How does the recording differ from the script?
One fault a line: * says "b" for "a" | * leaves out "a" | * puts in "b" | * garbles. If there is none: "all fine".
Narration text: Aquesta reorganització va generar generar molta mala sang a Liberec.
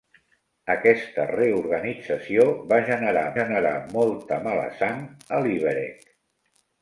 all fine